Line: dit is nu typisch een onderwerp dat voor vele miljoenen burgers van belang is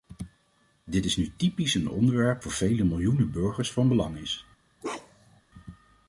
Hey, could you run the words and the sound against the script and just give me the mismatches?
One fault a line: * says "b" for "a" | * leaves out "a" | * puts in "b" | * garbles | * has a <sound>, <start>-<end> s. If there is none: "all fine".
* leaves out "dat"
* has a bark, 4.8-5.4 s